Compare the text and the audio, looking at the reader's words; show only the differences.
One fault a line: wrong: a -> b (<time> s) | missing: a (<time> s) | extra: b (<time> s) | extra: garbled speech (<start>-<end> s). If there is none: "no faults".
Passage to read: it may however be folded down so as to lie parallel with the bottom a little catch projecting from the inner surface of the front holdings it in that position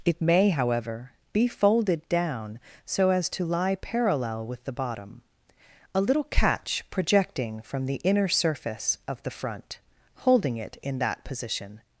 wrong: holdings -> holding (10.2 s)